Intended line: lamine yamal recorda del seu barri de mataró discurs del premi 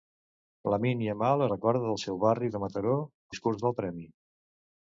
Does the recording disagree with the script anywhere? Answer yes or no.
no